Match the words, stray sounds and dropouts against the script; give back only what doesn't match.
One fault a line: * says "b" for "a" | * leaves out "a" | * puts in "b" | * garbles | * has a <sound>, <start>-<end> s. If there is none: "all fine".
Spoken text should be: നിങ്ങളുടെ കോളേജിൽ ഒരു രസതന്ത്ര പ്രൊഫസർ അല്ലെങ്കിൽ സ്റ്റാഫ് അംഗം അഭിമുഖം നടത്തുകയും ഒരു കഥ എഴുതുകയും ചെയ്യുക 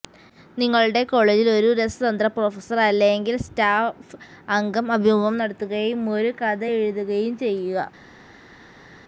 all fine